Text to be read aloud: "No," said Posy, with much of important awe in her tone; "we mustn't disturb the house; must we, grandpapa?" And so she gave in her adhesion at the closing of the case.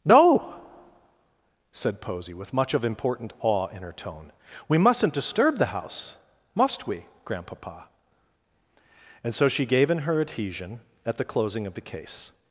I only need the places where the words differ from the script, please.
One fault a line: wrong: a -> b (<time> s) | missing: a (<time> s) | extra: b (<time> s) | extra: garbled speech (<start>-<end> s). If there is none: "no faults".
no faults